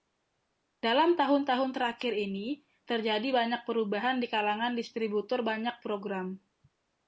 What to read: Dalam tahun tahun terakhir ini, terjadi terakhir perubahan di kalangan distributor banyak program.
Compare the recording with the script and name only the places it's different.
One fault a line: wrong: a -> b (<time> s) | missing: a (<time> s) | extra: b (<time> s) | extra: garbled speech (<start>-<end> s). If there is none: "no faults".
wrong: terakhir -> banyak (3.3 s)